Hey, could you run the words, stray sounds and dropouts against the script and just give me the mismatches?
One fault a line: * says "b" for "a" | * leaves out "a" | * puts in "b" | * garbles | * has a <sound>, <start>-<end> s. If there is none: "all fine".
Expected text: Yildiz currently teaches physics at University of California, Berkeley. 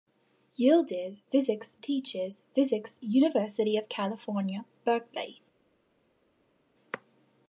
* says "physics" for "currently"
* leaves out "at"